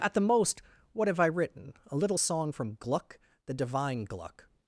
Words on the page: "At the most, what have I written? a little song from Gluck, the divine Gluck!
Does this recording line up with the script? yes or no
yes